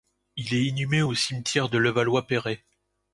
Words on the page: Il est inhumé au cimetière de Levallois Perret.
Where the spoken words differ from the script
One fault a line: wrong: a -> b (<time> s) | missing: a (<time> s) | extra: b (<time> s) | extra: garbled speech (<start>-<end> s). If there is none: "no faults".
no faults